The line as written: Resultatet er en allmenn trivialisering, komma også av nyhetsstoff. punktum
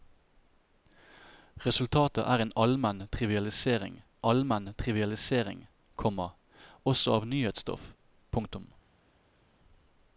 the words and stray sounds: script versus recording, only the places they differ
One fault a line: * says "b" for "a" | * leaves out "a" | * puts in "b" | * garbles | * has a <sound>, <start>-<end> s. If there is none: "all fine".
* puts in "allmenn trivialisering"